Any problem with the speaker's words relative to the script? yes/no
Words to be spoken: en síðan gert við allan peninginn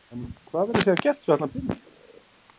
yes